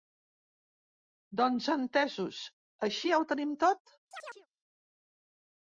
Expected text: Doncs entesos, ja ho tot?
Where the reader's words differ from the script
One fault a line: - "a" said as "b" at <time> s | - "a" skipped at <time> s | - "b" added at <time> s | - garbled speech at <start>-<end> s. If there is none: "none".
- "així" added at 2.9 s
- "tenim" added at 3.4 s